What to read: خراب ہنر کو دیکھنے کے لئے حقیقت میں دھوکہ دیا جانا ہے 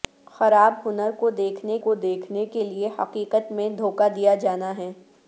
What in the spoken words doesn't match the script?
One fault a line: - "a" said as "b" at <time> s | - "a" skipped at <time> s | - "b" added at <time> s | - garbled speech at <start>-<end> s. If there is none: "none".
- "کو دیکھنے" added at 1.8 s